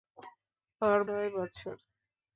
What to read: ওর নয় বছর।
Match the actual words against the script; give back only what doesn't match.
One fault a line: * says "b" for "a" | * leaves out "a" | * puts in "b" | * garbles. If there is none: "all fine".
all fine